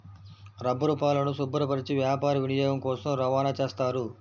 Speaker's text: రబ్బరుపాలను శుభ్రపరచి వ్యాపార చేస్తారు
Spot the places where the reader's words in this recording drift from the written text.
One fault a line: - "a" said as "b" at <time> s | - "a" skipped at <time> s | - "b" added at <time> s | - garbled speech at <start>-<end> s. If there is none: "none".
- "వినియోగం కోసం రవాణా" added at 2.4 s